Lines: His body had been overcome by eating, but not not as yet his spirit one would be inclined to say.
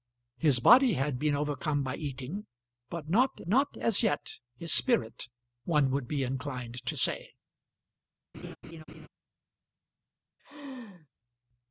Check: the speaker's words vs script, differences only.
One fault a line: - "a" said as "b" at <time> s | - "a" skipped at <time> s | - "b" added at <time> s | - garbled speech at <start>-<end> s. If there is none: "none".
none